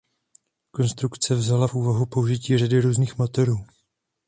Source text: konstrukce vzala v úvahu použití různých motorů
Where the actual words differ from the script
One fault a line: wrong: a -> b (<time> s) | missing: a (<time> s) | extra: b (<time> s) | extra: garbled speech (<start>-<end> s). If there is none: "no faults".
extra: řady (2.6 s)